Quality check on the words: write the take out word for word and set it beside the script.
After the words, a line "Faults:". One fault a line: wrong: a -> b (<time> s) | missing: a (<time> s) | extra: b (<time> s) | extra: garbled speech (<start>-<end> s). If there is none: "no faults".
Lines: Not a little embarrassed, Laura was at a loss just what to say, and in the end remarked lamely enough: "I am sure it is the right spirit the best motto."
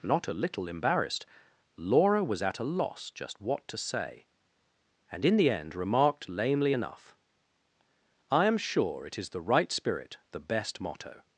Not a little embarrassed, Laura was at a loss just what to say, and in the end remarked lamely enough: "I am sure it is the right spirit the best motto."
Faults:
no faults